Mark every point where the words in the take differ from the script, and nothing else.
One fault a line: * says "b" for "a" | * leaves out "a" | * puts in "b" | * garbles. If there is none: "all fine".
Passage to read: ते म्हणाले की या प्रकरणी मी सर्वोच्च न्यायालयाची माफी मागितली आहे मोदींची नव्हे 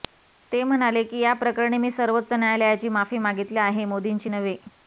all fine